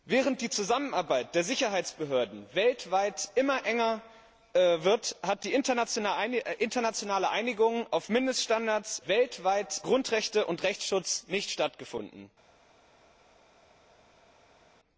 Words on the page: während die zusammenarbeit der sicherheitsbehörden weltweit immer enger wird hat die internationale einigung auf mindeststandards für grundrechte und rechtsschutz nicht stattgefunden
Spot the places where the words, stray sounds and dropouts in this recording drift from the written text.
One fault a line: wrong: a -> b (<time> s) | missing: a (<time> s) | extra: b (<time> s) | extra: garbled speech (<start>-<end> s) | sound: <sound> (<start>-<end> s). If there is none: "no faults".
wrong: für -> weltweit (9.1 s)